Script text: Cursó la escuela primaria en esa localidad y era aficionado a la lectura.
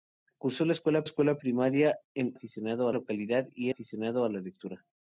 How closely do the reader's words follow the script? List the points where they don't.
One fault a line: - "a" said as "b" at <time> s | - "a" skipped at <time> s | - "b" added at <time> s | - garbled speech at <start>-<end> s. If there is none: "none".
- "escuela" added at 1.0 s
- "esa" said as "aficionado" at 2.3 s
- "era" skipped at 3.7 s